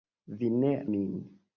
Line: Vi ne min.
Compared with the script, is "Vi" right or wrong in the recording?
right